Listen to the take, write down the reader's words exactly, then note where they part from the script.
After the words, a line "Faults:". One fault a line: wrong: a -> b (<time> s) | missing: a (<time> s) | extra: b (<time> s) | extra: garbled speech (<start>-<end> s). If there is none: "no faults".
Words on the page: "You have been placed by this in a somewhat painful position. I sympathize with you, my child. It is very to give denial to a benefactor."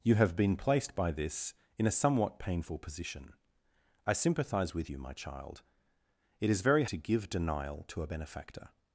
"You have been placed by this in a somewhat painful position. I sympathize with you, my child. It is very to give denial to a benefactor."
Faults:
no faults